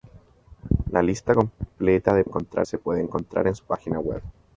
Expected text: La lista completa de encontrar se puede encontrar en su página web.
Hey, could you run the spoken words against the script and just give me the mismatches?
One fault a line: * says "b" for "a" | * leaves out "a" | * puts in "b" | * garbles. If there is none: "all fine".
all fine